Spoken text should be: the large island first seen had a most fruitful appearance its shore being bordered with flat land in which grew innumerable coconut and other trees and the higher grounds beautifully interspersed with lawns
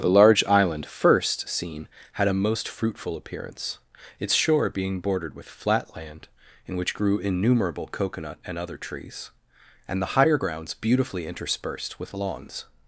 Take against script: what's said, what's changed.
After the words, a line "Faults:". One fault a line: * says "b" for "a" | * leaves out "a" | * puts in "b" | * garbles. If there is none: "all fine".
the large island first seen had a most fruitful appearance its shore being bordered with flat land in which grew innumerable coconut and other trees and the higher grounds beautifully interspersed with lawns
Faults:
all fine